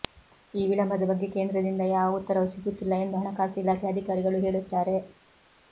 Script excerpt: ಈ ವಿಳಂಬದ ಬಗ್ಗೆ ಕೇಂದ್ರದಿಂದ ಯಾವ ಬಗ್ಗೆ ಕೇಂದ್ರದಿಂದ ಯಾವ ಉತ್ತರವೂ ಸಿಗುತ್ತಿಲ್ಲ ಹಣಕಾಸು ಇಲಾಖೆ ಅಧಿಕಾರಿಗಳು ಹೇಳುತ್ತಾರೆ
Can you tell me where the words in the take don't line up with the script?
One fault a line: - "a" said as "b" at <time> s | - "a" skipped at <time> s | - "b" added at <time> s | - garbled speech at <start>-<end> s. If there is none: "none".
- "ಬಗ್ಗೆ ಕೇಂದ್ರದಿಂದ ಯಾವ" skipped at 2.2 s
- "ಎಂದು" added at 3.0 s